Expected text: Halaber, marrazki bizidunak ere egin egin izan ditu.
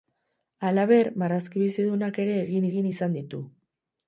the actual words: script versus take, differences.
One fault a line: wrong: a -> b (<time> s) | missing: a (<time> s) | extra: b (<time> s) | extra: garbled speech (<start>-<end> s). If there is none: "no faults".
no faults